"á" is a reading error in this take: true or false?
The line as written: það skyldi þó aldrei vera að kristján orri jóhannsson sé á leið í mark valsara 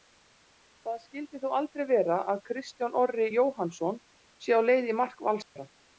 false